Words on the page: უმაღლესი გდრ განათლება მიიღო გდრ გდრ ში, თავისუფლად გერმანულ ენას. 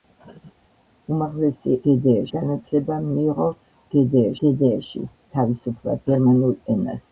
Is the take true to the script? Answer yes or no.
yes